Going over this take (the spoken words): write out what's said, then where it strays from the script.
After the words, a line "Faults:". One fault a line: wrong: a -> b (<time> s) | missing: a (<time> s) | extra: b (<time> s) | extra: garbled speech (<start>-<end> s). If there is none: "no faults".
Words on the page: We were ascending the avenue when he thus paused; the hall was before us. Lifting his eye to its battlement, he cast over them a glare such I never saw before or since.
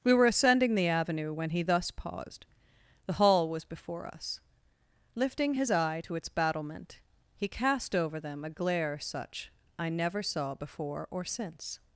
We were ascending the avenue when he thus paused; the hall was before us. Lifting his eye to its battlement, he cast over them a glare such I never saw before or since.
Faults:
no faults